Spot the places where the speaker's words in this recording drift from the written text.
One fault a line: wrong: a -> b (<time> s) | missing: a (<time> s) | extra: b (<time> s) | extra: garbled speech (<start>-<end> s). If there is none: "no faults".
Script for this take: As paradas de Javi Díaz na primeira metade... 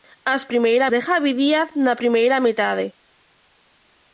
wrong: paradas -> primeira (0.5 s)